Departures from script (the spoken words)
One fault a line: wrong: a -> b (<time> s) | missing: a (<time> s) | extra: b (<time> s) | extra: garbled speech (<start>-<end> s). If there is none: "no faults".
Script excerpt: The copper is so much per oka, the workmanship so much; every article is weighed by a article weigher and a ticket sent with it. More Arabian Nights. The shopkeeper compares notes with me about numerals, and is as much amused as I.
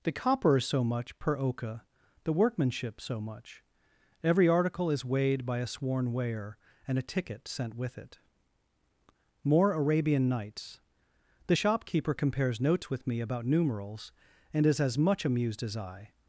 wrong: article -> sworn (5.7 s)